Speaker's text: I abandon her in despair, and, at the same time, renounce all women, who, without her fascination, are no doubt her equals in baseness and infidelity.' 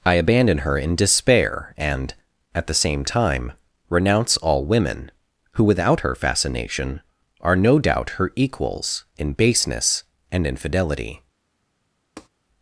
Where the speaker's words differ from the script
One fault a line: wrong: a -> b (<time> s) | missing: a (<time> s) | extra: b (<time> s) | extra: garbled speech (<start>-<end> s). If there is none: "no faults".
no faults